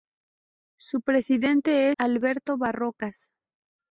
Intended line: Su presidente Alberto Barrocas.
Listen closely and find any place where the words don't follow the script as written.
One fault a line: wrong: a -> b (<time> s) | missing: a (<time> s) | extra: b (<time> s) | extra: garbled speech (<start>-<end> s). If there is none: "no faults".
no faults